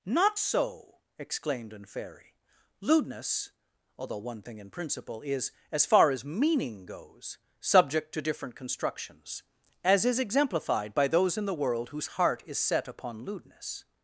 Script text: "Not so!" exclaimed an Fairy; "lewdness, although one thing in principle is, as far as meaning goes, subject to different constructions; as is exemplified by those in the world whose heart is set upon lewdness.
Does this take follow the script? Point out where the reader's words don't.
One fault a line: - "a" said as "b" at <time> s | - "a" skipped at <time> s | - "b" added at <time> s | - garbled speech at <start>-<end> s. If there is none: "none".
none